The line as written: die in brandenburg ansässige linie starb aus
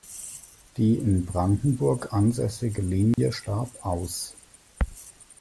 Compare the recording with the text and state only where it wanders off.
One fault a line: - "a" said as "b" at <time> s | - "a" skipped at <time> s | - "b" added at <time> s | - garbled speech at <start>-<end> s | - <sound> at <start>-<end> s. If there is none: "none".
- dropout at 3.1-3.2 s